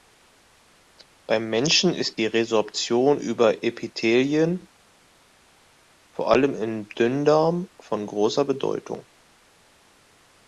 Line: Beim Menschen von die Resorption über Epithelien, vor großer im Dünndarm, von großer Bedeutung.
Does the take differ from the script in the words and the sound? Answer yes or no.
yes